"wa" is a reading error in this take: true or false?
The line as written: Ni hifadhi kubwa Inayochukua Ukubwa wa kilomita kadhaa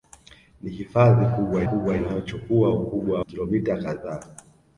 true